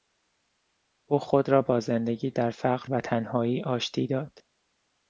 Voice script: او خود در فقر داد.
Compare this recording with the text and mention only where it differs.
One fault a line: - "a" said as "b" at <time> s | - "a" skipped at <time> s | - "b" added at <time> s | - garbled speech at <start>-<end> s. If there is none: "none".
- "را با زندگی" added at 1.5 s
- "و تنهایی آشتی" added at 2.9 s